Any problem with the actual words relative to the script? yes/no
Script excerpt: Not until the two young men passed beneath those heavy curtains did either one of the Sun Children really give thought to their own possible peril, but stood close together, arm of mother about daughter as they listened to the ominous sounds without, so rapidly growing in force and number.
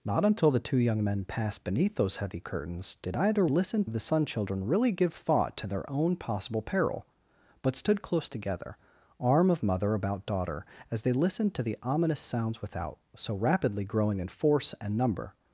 yes